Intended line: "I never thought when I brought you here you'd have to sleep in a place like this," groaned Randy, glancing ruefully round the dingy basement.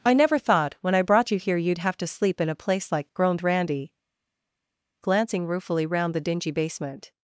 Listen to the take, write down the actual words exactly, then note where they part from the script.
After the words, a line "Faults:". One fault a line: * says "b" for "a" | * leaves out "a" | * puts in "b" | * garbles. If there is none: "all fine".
"I never thought when I brought you here you'd have to sleep in a place like," groaned Randy, glancing ruefully round the dingy basement.
Faults:
* leaves out "this"